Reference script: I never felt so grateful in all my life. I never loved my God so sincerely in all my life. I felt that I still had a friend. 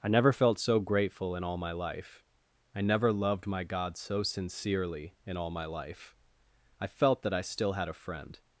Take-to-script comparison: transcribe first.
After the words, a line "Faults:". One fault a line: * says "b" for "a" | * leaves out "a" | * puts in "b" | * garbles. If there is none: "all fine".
I never felt so grateful in all my life. I never loved my God so sincerely in all my life. I felt that I still had a friend.
Faults:
all fine